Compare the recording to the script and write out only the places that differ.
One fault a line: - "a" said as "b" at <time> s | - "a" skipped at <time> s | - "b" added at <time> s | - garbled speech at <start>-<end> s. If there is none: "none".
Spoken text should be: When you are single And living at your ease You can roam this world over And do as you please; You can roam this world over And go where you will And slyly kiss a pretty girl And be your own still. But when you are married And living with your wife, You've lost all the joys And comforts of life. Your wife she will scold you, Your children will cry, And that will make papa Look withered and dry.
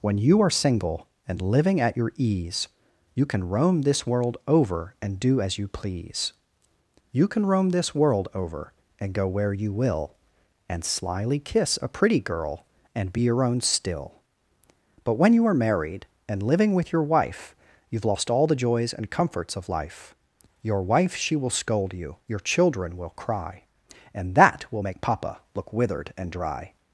none